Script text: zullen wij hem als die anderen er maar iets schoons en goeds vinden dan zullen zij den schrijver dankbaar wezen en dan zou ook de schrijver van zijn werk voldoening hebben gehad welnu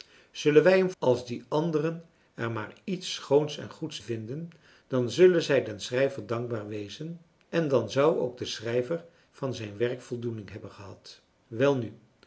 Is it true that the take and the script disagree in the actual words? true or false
false